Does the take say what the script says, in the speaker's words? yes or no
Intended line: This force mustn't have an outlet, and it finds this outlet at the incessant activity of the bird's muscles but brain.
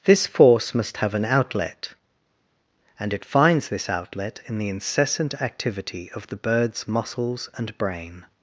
no